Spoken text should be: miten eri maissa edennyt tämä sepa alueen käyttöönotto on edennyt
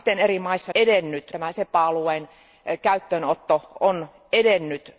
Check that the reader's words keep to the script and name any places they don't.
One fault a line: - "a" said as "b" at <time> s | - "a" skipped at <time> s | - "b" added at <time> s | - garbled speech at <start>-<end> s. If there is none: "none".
none